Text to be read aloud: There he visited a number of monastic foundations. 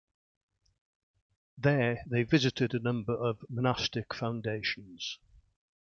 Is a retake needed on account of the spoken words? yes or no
yes